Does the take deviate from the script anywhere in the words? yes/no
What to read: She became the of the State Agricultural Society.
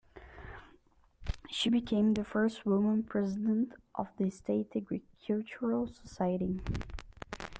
yes